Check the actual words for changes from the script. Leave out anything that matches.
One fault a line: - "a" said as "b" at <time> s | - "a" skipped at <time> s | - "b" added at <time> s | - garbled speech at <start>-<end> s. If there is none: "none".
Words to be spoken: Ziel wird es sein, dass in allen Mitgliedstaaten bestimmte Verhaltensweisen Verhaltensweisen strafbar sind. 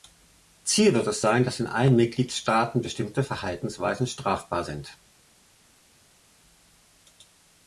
- "Verhaltensweisen" skipped at 4.1 s